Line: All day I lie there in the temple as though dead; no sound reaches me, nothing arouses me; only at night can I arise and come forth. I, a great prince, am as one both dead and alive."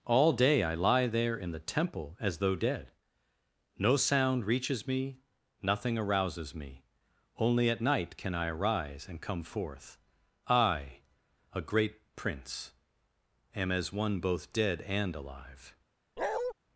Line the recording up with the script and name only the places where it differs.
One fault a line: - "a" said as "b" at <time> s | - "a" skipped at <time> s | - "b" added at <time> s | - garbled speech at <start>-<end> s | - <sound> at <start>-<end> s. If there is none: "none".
- bark at 16.2-16.5 s